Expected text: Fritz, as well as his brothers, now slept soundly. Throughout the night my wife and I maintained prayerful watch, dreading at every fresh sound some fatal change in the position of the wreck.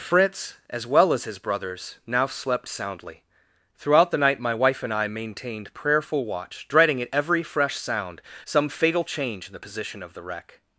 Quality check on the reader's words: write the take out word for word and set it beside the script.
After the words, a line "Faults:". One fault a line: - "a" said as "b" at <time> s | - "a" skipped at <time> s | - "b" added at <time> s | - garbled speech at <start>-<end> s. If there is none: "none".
Fritz, as well as his brothers, now slept soundly. Throughout the night my wife and I maintained prayerful watch, dreading at every fresh sound some fatal change in the position of the wreck.
Faults:
none